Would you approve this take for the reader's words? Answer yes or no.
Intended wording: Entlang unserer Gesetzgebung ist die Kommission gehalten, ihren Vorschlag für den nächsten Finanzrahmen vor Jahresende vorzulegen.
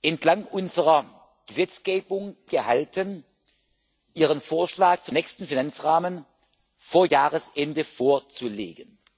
no